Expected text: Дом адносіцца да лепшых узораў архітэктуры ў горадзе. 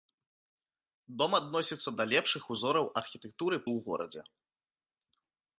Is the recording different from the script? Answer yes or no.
no